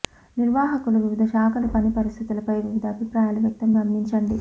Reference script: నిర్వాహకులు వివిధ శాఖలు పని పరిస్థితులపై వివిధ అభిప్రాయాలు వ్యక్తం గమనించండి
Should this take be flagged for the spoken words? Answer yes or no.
no